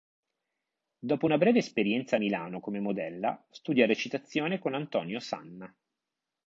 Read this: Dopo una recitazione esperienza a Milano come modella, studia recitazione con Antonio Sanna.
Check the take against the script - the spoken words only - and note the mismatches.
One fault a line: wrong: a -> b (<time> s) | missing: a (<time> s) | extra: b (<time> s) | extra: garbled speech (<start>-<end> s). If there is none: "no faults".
wrong: recitazione -> breve (1.4 s)